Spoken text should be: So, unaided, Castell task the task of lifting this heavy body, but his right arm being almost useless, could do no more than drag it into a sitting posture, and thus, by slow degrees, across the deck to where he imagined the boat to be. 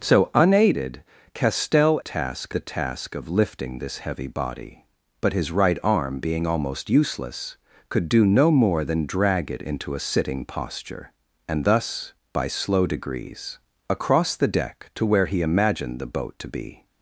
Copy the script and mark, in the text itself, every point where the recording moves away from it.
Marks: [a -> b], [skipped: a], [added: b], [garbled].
So, unaided, Castell task the task of lifting this heavy body, but his right arm being almost useless, could do no more than drag it into a sitting posture, and thus, by slow degrees, across the deck to where he imagined the boat to be.